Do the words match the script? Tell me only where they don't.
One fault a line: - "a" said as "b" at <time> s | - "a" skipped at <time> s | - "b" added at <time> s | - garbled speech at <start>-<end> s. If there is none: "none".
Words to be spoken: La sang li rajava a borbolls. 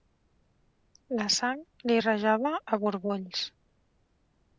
none